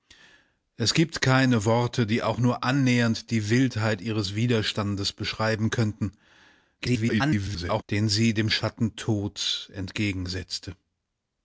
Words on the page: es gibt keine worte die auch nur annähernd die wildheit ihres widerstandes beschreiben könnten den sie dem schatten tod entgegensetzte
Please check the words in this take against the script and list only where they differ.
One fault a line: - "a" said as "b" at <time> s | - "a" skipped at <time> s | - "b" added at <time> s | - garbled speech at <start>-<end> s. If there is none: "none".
- garbled speech at 6.8-7.8 s